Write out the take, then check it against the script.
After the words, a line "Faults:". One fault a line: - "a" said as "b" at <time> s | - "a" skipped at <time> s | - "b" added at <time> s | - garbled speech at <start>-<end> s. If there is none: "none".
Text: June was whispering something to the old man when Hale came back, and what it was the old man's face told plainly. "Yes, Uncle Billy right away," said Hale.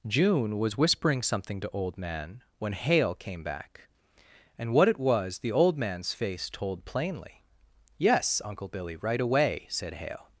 June was whispering something to old man when Hale came back, and what it was the old man's face told plainly. "Yes, Uncle Billy right away," said Hale.
Faults:
- "the" skipped at 1.7 s